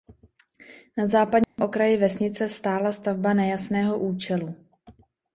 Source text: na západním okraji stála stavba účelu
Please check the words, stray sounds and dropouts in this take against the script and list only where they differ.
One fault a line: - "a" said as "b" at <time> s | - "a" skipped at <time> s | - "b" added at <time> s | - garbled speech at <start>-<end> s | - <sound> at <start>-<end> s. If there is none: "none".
- dropout at 1.4-1.6 s
- "vesnice" added at 2.0 s
- "nejasného" added at 3.3 s